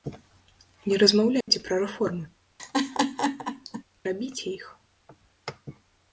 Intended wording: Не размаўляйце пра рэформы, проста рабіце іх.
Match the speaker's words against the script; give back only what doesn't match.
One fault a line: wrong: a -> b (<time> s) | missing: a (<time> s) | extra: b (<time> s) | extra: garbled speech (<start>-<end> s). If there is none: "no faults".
missing: проста (2.2 s)